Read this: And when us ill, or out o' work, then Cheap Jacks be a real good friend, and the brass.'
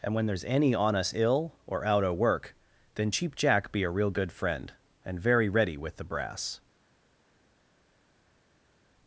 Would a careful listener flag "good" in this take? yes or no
no